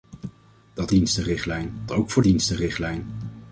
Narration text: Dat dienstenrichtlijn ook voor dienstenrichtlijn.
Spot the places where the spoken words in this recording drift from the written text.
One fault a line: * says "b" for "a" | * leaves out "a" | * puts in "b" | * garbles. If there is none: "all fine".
all fine